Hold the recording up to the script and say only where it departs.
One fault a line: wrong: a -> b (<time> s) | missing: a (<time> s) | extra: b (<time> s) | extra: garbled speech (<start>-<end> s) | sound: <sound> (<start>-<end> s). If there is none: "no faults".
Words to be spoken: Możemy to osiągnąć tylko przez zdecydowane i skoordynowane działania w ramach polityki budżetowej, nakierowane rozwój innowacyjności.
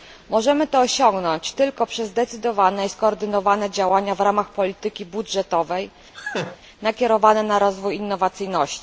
sound: laugh (6.1-6.6 s)
extra: na (7.4 s)